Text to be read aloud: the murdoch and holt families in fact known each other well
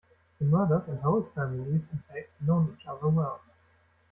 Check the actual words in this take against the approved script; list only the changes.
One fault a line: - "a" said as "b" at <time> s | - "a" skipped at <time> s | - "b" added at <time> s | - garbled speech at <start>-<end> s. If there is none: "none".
none